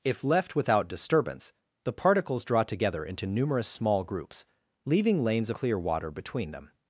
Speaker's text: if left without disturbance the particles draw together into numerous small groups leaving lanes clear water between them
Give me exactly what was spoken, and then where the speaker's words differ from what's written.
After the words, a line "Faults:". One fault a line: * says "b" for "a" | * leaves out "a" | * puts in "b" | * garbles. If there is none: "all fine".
if left without disturbance the particles draw together into numerous small groups leaving lanes clear water between them
Faults:
all fine